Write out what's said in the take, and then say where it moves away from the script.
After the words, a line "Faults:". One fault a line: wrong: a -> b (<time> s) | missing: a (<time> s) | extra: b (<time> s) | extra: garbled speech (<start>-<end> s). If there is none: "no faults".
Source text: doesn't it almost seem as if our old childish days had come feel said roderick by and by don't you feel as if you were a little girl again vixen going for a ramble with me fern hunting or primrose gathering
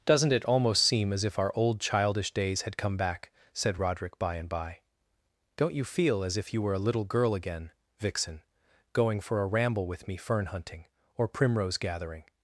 doesn't it almost seem as if our old childish days had come back said roderick by and by don't you feel as if you were a little girl again vixen going for a ramble with me fern hunting or primrose gathering
Faults:
wrong: feel -> back (3.0 s)